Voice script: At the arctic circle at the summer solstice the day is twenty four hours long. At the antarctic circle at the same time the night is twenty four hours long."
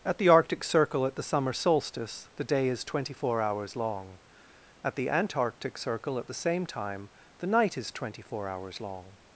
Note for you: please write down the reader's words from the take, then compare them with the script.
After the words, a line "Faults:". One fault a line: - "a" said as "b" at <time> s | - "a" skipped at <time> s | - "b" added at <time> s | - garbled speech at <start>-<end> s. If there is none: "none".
At the arctic circle at the summer solstice the day is twenty four hours long. At the antarctic circle at the same time the night is twenty four hours long."
Faults:
none